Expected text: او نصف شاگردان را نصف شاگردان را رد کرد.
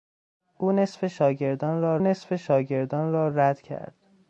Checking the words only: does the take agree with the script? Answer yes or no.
yes